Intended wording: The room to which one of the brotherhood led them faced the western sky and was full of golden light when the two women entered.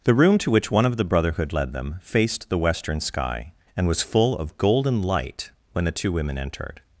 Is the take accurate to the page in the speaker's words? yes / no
yes